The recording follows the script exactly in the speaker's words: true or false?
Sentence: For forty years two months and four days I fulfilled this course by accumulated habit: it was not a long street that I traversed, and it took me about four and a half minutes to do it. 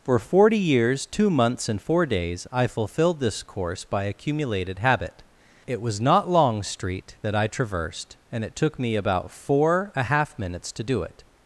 false